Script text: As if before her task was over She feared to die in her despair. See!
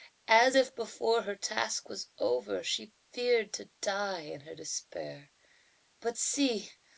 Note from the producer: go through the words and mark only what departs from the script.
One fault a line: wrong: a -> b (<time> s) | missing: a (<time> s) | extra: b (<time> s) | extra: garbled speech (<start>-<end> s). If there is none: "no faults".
extra: But (6.0 s)